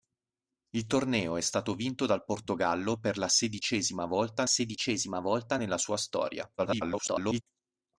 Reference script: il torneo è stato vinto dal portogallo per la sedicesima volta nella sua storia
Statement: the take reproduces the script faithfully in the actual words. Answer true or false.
false